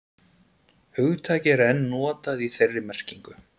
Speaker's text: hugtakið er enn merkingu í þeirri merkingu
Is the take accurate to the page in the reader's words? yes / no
no